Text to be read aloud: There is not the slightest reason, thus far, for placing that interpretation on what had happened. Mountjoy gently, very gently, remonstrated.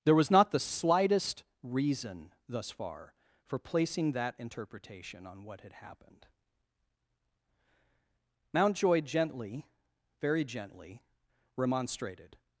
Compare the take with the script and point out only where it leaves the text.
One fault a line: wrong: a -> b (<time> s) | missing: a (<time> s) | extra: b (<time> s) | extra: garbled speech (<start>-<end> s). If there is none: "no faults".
wrong: is -> was (0.1 s)